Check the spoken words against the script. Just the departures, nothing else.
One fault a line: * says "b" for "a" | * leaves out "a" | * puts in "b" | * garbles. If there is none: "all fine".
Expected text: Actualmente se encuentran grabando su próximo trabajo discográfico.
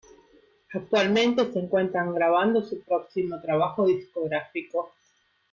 all fine